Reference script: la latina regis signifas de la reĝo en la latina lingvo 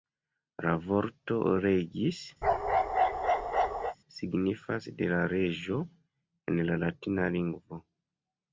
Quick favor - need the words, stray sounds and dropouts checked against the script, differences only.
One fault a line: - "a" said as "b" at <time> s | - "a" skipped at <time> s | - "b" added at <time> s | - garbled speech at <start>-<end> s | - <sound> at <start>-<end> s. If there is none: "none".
- "latina" said as "vorto" at 0.8 s
- bark at 2.4-4.0 s